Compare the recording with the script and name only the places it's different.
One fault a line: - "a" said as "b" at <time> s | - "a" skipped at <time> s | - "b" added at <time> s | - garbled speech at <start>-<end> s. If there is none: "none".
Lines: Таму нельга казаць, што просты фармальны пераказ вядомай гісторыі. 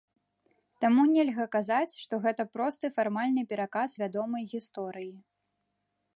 - "гэта" added at 2.2 s